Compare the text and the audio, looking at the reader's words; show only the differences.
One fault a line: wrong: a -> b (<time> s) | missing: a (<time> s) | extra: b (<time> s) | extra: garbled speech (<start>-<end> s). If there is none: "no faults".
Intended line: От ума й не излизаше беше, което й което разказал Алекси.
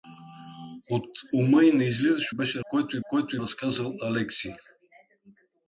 no faults